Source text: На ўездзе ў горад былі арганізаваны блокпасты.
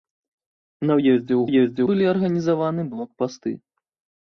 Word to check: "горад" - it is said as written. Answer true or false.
false